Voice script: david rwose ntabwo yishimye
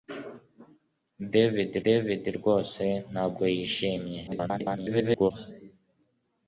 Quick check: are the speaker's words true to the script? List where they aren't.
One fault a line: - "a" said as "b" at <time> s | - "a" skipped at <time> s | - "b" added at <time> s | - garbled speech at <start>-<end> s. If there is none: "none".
- "david" added at 1.8 s
- garbled speech at 4.3-5.3 s